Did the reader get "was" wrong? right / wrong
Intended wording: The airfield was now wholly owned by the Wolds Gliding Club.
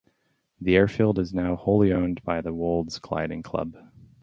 wrong